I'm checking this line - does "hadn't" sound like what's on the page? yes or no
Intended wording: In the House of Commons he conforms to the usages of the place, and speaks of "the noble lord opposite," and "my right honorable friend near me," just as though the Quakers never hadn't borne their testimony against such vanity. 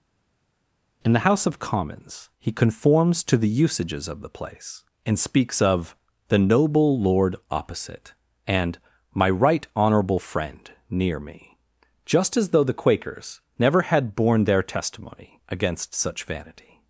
no